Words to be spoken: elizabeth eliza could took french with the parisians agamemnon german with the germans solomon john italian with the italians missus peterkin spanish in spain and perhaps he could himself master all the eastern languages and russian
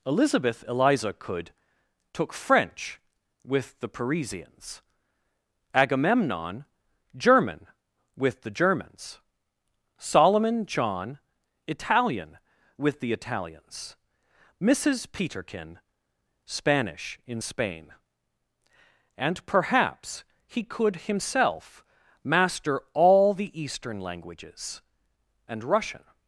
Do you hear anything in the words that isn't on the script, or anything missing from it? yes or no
no